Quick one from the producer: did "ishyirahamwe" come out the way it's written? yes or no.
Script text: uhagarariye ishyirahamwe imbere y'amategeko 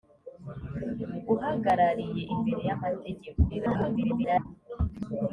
no